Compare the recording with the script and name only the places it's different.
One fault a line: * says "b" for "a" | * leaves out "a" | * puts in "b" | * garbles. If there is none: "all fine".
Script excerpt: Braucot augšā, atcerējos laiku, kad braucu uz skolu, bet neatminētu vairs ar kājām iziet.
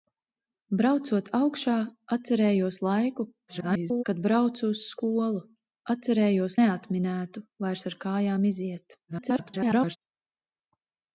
* garbles
* says "atcerējos" for "bet"
* garbles